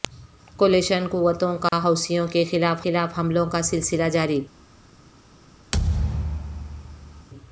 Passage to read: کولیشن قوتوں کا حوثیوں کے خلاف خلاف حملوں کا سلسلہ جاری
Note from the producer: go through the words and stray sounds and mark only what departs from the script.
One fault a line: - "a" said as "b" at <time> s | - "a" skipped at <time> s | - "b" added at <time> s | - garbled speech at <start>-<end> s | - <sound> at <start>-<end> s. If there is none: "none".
- dropout at 1.7-1.7 s
- thud at 5.7-7.3 s